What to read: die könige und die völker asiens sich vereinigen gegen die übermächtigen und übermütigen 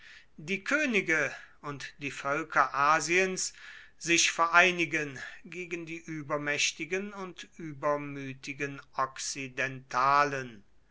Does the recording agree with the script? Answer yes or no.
yes